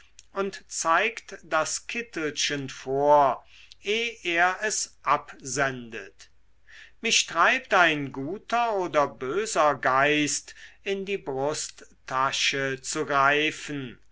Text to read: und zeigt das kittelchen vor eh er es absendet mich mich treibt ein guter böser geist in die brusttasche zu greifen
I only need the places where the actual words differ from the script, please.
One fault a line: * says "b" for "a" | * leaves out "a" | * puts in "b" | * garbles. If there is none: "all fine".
* leaves out "mich"
* puts in "oder"